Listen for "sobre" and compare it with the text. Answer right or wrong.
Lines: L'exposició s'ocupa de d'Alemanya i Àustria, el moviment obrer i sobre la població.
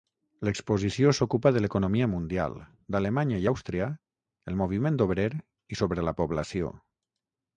right